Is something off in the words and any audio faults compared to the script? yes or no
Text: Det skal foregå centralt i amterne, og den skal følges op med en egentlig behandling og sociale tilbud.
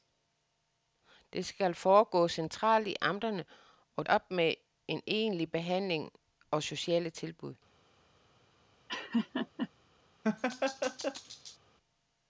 yes